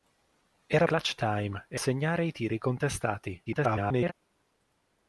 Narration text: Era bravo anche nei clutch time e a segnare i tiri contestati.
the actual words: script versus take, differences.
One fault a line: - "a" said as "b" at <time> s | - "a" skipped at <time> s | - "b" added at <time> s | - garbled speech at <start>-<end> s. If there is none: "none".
- "bravo anche nei" skipped at 0.9 s
- "a" skipped at 1.8 s
- garbled speech at 3.5-4.1 s